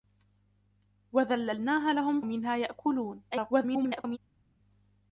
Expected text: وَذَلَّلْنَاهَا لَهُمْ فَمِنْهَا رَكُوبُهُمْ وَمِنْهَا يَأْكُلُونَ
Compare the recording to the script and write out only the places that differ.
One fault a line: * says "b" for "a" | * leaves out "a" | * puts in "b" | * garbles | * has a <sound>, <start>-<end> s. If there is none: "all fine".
* leaves out "فَمِنْهَا رَكُوبُهُمْ"
* garbles